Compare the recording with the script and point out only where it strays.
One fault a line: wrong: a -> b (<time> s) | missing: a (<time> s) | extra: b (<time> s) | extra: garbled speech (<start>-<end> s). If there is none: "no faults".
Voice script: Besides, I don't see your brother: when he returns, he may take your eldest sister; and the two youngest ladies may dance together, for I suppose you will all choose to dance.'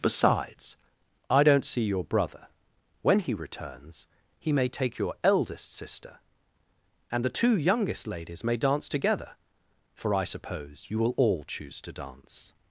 no faults